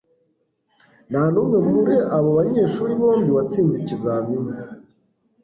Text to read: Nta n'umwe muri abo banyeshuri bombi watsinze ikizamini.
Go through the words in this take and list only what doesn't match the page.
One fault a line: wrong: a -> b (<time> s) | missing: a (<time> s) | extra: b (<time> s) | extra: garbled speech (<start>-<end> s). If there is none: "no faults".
no faults